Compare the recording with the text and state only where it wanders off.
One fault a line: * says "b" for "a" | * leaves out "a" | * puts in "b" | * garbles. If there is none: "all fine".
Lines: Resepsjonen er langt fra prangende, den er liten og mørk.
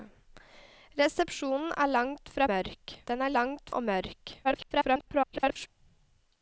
* says "mørk" for "prangende"
* says "langt" for "liten"
* garbles